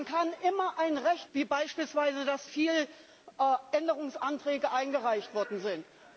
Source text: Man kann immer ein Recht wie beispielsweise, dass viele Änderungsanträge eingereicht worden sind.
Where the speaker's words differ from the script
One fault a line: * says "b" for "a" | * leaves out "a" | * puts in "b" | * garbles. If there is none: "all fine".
all fine